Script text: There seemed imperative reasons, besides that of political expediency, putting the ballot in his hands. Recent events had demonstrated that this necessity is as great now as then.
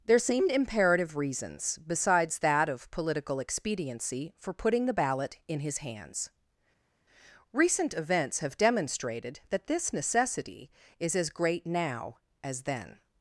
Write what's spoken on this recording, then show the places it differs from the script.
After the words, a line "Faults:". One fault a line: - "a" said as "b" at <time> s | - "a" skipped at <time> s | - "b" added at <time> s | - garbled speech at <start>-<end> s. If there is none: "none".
There seemed imperative reasons, besides that of political expediency, for putting the ballot in his hands. Recent events have demonstrated that this necessity is as great now as then.
Faults:
- "for" added at 4.4 s
- "had" said as "have" at 8.4 s